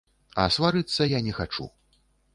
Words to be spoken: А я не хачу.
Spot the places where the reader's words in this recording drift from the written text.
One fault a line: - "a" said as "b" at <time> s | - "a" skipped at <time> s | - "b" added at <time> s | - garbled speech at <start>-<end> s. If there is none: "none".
- "сварыцца" added at 0.6 s